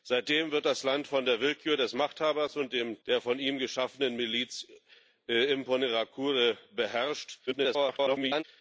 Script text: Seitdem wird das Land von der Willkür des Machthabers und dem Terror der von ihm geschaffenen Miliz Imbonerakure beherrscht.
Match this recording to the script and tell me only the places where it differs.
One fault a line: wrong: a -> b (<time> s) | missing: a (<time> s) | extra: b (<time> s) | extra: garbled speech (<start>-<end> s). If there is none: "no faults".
missing: Terror (3.0 s)
extra: garbled speech (7.5-8.4 s)